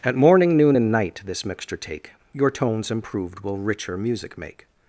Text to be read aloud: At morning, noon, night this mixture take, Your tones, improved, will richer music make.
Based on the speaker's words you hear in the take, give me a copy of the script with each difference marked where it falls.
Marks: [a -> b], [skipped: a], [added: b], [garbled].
At morning, noon, [added: and] night this mixture take, Your tones, improved, will richer music make.